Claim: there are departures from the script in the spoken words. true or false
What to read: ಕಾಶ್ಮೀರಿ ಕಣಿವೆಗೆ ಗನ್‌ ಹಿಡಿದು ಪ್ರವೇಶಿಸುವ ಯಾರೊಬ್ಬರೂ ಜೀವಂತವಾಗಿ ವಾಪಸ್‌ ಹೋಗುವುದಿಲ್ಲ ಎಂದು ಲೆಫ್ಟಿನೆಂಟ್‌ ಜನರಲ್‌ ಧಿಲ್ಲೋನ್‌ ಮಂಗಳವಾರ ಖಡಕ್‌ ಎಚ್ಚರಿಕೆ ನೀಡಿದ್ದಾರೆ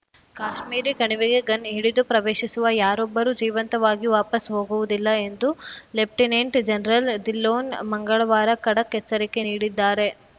false